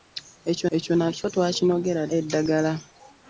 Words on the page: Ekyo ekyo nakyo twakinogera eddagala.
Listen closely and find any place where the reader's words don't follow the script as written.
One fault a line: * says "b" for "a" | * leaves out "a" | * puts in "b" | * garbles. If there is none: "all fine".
all fine